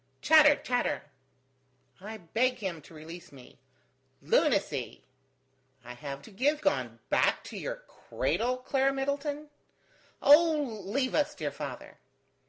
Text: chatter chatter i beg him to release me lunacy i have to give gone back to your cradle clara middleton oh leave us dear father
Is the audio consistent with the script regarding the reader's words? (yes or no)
yes